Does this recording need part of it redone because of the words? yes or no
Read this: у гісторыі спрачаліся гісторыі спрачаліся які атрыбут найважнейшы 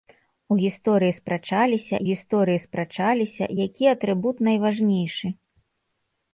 no